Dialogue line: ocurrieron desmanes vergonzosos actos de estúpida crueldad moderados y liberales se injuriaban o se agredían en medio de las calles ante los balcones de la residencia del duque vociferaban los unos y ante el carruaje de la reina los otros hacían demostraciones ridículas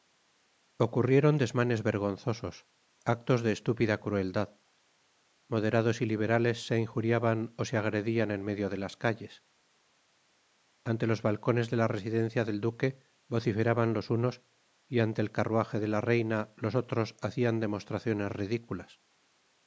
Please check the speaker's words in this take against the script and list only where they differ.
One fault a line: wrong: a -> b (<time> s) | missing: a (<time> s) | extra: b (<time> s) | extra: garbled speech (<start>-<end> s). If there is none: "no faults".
no faults